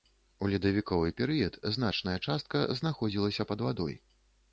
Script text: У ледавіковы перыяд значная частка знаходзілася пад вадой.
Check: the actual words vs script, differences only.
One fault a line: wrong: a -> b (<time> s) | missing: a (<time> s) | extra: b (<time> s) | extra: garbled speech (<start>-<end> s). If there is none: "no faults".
no faults